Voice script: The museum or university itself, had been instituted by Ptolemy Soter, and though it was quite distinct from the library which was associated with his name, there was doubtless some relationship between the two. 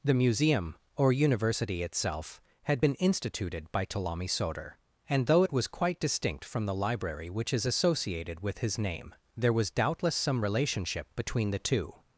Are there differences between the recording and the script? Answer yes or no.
yes